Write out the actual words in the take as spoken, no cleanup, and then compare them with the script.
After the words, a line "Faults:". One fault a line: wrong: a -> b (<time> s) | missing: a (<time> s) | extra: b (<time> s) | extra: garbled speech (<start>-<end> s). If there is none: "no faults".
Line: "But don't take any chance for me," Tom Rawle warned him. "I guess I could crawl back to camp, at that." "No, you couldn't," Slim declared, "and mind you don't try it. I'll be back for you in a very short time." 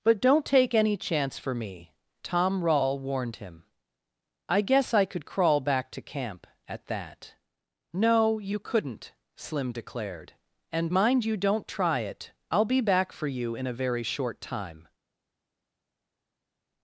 "But don't take any chance for me," Tom Rawle warned him. "I guess I could crawl back to camp, at that." "No, you couldn't," Slim declared, "and mind you don't try it. I'll be back for you in a very short time."
Faults:
no faults